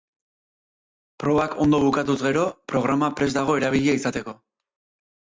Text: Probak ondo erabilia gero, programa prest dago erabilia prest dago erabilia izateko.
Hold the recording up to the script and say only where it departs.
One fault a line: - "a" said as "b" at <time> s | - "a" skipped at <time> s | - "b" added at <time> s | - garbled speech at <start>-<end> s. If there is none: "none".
- "erabilia" said as "bukatuz" at 1.8 s
- "prest dago erabilia" skipped at 4.0 s